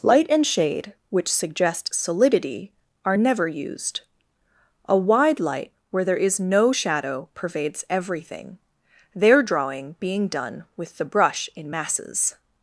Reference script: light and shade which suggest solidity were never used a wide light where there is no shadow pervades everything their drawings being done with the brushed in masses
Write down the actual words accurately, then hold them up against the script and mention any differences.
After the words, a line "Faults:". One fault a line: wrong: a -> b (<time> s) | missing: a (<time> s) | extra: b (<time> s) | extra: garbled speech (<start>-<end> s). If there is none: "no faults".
light and shade which suggest solidity are never used a wide light where there is no shadow pervades everything their drawing being done with the brush in masses
Faults:
wrong: were -> are (3.0 s)
wrong: drawings -> drawing (9.4 s)
wrong: brushed -> brush (11.0 s)